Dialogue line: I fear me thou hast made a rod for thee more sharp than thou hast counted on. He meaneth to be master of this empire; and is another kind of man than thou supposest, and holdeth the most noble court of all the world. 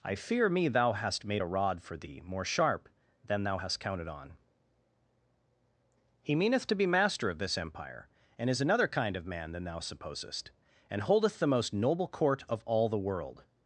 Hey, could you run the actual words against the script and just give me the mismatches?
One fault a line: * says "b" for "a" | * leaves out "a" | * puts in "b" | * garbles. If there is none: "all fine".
all fine